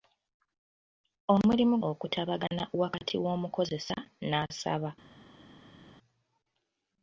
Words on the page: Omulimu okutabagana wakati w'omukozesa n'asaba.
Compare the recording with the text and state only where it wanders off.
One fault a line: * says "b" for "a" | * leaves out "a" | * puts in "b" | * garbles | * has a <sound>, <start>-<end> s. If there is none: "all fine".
all fine